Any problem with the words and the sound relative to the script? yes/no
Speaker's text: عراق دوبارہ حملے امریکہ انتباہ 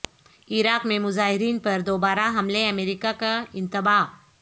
yes